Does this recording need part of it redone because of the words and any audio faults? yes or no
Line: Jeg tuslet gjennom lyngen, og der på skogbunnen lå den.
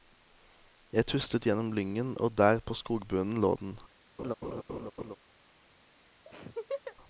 yes